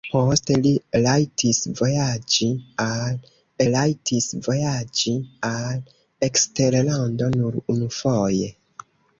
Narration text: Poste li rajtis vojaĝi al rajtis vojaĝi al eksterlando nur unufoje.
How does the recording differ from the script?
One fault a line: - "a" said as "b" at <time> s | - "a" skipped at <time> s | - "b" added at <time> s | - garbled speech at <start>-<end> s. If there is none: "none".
none